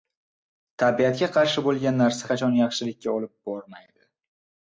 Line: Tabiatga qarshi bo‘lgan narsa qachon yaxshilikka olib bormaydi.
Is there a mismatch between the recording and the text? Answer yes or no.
no